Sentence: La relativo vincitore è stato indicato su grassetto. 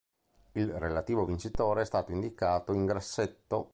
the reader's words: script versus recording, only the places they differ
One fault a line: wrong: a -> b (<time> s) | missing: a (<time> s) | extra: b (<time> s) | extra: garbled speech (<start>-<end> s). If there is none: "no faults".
wrong: La -> Il (0.5 s)
wrong: su -> in (2.7 s)